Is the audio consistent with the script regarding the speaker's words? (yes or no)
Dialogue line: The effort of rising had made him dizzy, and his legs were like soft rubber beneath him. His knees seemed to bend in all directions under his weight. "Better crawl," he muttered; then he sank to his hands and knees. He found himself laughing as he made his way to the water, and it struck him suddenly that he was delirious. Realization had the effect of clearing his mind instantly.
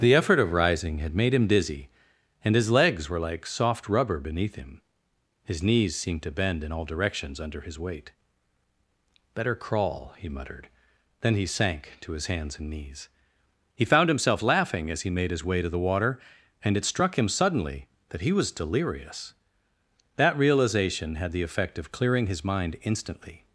no